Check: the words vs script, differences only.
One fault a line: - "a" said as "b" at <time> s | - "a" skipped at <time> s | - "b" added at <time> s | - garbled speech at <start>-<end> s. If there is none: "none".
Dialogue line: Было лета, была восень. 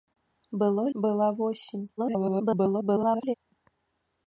- "лета" skipped at 0.9 s
- garbled speech at 2.0-3.3 s